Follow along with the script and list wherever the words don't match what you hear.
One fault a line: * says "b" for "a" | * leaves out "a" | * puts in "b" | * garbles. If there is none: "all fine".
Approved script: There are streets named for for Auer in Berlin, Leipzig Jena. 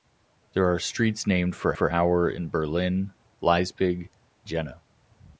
all fine